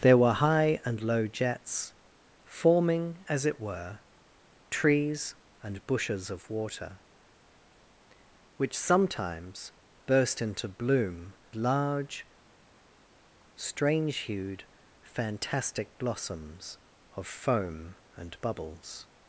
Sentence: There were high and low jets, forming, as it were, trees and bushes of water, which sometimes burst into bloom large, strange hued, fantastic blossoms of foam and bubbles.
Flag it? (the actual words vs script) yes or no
no